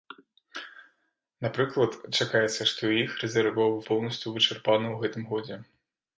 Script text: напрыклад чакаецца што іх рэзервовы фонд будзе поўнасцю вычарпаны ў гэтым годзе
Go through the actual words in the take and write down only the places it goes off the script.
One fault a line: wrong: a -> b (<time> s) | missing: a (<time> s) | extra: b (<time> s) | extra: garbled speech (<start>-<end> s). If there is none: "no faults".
missing: фонд будзе (3.8 s)